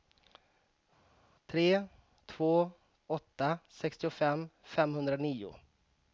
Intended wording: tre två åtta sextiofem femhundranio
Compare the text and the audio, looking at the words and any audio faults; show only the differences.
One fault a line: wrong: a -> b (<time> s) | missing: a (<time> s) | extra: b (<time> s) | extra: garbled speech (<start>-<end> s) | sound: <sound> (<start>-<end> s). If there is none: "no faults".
no faults